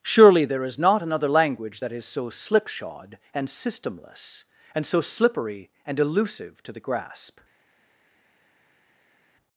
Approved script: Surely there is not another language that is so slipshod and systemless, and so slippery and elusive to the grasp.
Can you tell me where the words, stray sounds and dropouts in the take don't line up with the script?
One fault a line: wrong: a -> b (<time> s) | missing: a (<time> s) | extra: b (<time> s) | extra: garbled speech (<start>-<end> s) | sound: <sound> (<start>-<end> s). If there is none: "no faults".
no faults